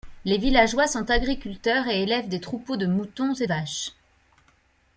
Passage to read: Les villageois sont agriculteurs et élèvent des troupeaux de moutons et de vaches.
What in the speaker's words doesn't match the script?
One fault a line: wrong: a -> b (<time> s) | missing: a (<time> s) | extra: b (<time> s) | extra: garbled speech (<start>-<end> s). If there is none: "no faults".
missing: de (3.5 s)